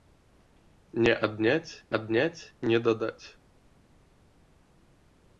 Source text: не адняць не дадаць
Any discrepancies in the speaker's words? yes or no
yes